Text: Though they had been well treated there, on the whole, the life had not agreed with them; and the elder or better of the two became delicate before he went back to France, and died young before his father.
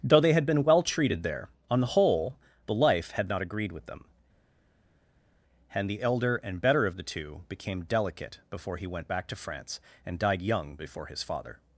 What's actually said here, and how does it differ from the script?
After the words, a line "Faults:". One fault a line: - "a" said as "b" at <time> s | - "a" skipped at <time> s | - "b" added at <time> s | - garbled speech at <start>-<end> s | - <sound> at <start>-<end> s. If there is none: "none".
Though they had been well treated there, on the whole, the life had not agreed with them; and the elder and better of the two became delicate before he went back to France, and died young before his father.
Faults:
- "or" said as "and" at 6.4 s